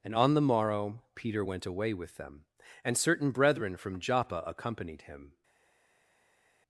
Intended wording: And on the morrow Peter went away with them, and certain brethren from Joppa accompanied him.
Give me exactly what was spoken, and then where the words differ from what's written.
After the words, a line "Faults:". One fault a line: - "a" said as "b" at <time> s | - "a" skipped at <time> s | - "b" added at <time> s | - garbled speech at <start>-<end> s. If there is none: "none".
And on the morrow Peter went away with them, and certain brethren from Joppa accompanied him.
Faults:
none